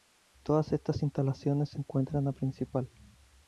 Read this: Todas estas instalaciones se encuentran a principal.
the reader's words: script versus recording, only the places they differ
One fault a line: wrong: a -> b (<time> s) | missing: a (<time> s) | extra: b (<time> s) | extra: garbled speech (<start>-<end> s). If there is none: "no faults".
no faults